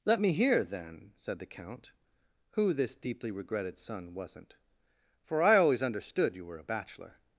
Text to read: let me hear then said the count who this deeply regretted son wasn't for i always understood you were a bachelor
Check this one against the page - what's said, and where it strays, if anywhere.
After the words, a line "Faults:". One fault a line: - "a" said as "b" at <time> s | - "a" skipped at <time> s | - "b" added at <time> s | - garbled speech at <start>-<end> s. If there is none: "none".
let me hear then said the count who this deeply regretted son wasn't for i always understood you were a bachelor
Faults:
none